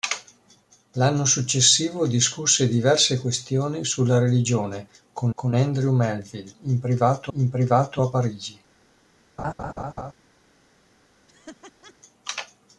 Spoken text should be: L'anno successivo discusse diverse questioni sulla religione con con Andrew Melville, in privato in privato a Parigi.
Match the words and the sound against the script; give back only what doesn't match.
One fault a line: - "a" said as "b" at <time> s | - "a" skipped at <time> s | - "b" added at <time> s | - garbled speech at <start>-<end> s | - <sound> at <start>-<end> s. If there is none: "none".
- laugh at 9.4-10.1 s
- laugh at 11.3-11.9 s